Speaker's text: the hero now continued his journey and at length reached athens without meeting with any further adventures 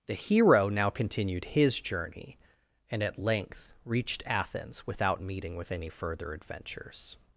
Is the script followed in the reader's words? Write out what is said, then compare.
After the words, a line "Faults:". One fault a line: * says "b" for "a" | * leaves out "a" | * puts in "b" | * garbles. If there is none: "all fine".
the hero now continued his journey and at length reached athens without meeting with any further adventures
Faults:
all fine